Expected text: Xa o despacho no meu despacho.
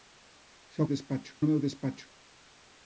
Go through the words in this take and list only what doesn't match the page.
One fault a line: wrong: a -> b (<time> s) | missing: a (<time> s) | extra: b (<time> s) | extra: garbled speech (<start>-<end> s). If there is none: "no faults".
no faults